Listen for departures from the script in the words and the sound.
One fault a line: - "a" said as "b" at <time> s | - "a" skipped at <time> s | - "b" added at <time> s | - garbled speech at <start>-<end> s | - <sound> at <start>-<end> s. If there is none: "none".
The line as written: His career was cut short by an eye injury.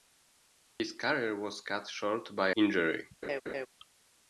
- dropout at 0.7-0.8 s
- "an eye" skipped at 2.5 s
- laugh at 3.2-3.7 s